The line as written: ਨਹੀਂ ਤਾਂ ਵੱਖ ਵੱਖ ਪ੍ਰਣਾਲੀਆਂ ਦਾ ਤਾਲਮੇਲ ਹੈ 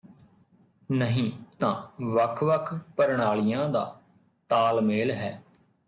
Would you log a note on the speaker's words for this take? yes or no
no